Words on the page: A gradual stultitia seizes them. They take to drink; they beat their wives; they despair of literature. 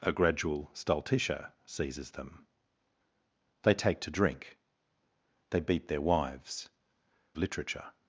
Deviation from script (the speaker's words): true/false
true